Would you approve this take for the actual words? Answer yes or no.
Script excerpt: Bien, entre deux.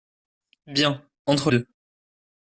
yes